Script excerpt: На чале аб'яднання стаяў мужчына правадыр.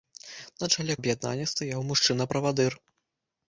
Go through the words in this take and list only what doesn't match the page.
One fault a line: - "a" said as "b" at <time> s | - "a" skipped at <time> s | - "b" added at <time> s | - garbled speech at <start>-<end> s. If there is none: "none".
none